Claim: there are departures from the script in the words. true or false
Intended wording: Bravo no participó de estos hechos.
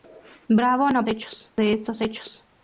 true